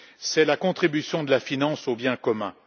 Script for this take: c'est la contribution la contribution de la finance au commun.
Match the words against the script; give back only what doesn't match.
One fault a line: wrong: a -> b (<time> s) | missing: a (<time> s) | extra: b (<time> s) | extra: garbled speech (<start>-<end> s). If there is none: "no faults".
missing: la contribution (1.2 s)
extra: bien (1.9 s)